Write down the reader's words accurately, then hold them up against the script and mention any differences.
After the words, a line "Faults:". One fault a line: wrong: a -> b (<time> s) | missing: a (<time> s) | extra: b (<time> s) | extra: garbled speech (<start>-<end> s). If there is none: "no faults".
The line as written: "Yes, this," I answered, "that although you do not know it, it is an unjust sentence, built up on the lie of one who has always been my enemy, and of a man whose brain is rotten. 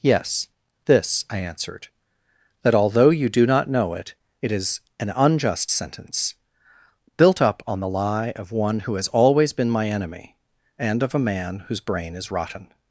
"Yes, this," I answered, "that although you do not know it, it is an unjust sentence, built up on the lie of one who has always been my enemy, and of a man whose brain is rotten.
Faults:
no faults